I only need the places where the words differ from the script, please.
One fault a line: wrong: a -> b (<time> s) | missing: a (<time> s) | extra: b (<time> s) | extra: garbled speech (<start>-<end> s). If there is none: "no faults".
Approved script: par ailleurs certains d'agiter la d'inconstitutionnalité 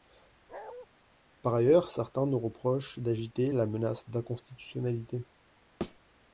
extra: nous reprochent (2.3 s)
extra: menace (3.7 s)